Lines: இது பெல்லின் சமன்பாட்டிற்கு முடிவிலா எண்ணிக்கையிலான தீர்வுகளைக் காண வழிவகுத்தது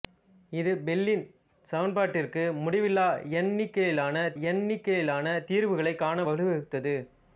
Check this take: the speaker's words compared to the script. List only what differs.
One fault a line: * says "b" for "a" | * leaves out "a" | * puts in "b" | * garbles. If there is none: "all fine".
* puts in "எண்ணிக்கையிலான"